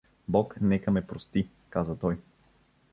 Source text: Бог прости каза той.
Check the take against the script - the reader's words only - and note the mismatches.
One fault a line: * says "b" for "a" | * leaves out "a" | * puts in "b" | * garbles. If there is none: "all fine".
* puts in "нека ме"